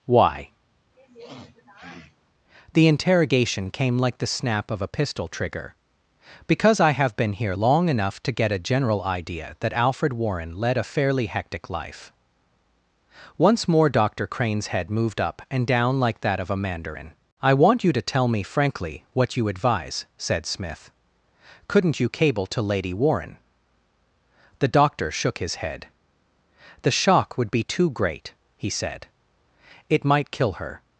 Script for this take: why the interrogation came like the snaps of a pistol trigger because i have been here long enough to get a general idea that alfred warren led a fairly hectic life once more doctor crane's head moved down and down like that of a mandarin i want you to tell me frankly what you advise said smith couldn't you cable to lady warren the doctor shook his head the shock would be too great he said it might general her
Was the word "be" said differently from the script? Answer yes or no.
no